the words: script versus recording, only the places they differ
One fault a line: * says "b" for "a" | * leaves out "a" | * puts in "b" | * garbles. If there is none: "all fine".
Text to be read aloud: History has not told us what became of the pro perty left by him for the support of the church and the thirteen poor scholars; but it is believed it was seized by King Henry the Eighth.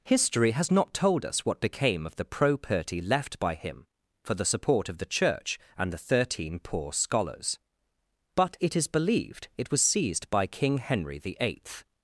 all fine